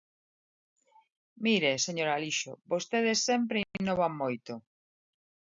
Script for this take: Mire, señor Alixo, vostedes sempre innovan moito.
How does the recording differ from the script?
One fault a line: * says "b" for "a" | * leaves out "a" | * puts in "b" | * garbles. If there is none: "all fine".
all fine